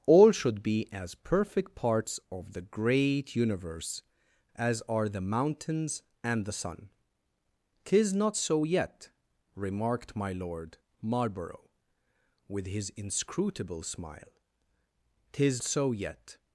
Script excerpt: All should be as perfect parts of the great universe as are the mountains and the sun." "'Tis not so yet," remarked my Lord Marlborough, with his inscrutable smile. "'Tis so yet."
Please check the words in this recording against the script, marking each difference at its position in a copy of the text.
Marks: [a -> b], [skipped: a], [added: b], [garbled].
All should be as perfect parts of the great universe as are the mountains and the sun." "'Tis not so yet," remarked my Lord Marlborough, with his inscrutable smile. "'Tis so yet."